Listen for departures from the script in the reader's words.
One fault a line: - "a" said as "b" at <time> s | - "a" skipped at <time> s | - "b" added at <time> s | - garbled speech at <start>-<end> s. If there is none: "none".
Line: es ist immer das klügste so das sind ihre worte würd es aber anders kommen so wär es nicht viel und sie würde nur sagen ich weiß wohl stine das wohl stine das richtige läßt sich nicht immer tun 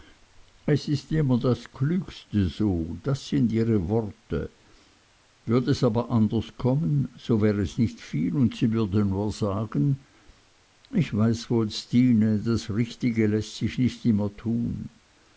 - "wohl stine das" skipped at 12.7 s